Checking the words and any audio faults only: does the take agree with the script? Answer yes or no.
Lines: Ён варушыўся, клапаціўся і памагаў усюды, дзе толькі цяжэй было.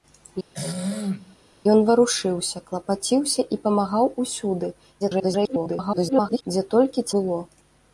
no